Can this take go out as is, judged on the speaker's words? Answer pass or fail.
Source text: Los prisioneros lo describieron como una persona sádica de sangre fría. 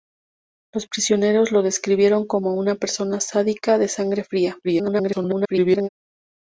fail